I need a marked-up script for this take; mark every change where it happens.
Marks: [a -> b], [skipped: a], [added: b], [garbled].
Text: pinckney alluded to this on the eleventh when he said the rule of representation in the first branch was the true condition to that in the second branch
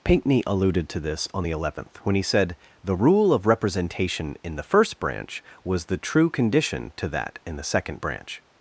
pinckney alluded to this on the eleventh when he said the rule of representation in the first branch was the true condition to that in the second branch